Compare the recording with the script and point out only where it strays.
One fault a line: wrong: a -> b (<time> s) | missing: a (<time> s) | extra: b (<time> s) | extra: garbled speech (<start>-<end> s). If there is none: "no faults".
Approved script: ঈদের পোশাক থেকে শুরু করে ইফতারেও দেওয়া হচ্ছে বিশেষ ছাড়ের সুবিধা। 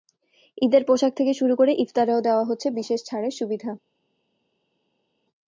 no faults